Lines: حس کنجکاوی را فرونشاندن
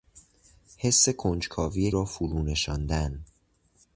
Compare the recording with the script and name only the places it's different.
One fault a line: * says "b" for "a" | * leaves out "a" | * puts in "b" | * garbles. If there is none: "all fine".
all fine